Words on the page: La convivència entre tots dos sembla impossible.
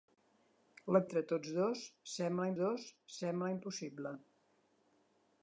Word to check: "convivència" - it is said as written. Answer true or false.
false